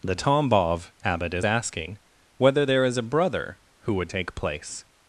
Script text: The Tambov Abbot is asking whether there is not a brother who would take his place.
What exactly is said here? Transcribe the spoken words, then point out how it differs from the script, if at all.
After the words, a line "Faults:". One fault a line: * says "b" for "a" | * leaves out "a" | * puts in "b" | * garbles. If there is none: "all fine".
The Tambov Abbot is asking whether there is a brother who would take place.
Faults:
* leaves out "not"
* leaves out "his"